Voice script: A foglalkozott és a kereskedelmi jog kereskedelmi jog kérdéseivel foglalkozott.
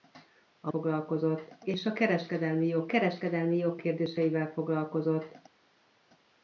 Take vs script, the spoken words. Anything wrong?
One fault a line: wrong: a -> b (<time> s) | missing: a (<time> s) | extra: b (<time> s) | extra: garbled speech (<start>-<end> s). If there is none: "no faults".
no faults